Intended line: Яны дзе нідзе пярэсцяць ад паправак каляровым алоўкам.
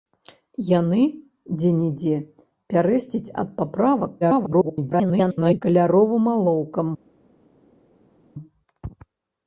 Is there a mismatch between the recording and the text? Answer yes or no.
yes